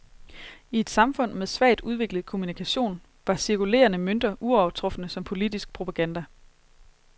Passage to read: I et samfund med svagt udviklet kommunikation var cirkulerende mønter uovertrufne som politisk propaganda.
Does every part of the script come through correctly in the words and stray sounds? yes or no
yes